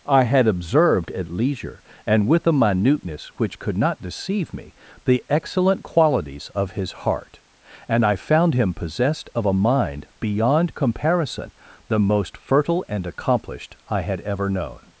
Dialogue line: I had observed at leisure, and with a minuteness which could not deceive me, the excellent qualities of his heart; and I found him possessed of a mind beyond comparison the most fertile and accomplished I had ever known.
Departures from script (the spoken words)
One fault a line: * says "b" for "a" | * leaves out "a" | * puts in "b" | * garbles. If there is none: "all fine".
all fine